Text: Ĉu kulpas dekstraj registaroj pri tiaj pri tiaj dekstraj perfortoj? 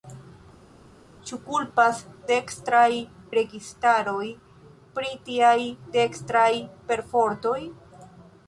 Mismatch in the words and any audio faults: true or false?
true